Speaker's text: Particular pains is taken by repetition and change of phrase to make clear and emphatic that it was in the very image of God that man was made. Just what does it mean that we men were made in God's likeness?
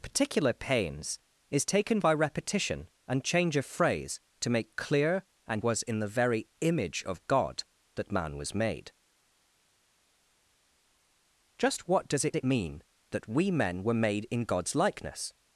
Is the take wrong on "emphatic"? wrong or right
wrong